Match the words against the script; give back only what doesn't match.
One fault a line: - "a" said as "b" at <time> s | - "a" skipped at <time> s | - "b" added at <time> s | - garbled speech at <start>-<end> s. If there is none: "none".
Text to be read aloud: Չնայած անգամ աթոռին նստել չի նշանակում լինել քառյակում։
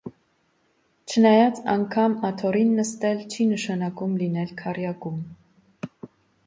none